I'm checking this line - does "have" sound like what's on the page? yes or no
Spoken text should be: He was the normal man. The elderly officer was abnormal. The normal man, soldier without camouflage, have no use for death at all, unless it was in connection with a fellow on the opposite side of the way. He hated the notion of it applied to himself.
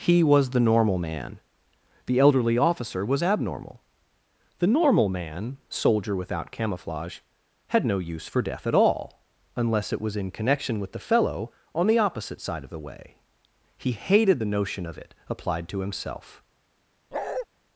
no